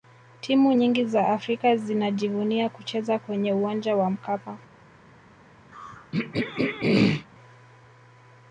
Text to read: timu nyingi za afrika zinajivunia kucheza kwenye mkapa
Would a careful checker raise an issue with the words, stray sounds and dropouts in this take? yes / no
yes